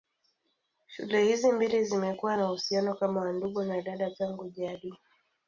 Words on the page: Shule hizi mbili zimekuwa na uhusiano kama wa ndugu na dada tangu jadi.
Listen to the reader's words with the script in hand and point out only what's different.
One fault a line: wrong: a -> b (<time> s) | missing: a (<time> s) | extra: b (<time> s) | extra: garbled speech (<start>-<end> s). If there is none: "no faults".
no faults